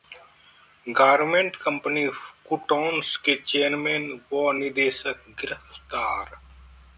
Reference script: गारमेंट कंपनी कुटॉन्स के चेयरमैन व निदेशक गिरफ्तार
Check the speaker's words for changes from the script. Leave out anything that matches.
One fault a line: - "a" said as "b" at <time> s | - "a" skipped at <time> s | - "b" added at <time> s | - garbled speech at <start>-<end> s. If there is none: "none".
none